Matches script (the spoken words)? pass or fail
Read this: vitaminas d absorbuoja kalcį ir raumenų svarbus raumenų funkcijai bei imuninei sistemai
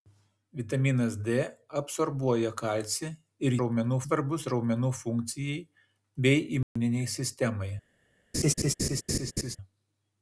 pass